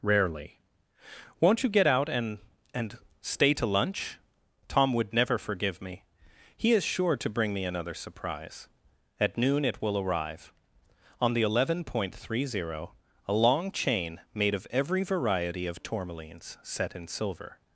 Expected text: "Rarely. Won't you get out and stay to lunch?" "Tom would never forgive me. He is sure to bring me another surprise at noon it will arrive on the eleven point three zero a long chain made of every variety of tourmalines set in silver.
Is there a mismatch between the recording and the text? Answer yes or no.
yes